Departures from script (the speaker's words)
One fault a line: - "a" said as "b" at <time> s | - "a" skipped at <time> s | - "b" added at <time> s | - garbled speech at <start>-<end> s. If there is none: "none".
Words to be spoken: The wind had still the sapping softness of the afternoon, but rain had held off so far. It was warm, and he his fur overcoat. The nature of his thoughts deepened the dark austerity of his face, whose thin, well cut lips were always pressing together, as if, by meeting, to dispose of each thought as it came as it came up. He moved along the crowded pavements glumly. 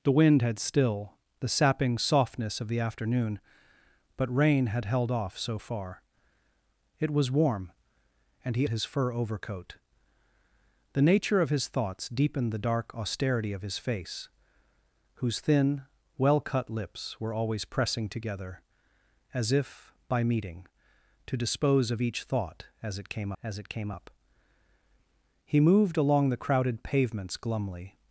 none